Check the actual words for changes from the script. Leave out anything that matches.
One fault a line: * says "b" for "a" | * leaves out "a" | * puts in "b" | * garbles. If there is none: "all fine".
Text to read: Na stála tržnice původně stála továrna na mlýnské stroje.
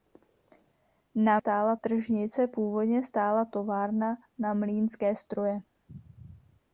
all fine